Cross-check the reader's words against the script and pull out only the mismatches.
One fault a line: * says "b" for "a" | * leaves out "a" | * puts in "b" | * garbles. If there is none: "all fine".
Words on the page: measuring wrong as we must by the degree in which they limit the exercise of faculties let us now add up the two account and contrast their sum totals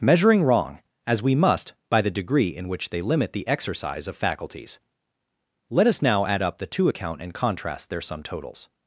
all fine